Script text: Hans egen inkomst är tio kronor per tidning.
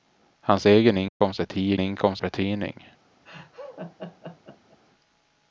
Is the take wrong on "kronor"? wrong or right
wrong